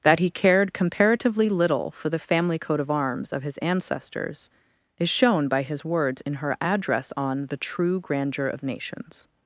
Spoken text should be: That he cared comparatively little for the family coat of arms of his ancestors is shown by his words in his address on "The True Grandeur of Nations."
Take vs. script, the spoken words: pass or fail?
fail